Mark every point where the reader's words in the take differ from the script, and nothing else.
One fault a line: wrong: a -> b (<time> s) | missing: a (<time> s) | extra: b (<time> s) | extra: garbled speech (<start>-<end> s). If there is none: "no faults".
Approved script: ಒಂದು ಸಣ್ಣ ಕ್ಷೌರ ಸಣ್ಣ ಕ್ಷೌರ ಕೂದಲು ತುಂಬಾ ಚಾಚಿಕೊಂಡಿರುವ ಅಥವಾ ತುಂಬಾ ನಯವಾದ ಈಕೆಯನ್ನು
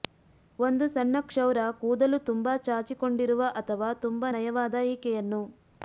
missing: ಸಣ್ಣ ಕ್ಷೌರ (1.6 s)